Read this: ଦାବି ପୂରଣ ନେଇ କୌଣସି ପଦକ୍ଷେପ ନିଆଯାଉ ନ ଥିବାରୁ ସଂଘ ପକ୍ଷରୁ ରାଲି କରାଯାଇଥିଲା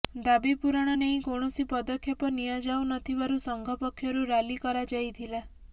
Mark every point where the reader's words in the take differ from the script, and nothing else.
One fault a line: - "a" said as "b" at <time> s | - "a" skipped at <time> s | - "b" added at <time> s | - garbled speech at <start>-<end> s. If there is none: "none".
none